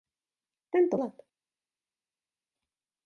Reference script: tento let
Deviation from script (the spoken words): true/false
false